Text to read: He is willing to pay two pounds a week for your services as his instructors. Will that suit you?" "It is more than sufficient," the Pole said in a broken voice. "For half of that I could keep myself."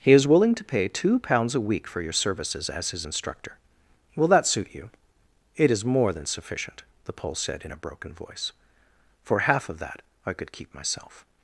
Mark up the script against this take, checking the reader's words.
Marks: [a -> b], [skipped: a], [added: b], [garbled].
He is willing to pay two pounds a week for your services as his [instructors. -> instructor] Will that suit you?" "It is more than sufficient," the Pole said in a broken voice. "For half of that I could keep myself."